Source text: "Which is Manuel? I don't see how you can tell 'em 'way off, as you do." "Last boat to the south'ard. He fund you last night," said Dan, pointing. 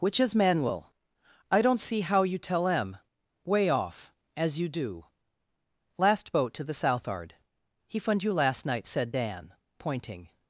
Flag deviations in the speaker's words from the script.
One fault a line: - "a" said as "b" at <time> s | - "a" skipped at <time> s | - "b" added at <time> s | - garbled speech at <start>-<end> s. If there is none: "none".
- "can" skipped at 2.4 s